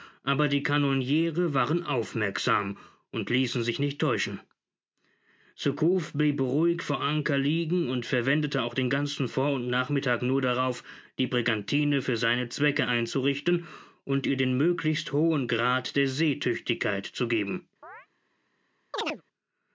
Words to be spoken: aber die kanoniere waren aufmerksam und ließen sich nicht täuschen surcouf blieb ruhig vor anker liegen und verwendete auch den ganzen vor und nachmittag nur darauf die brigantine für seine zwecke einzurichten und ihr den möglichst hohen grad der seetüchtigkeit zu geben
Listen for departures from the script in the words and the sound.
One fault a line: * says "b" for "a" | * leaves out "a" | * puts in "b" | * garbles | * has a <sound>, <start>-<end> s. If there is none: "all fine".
* has a chirp, 17.8-18.1 s
* has a chirp, 18.9-19.2 s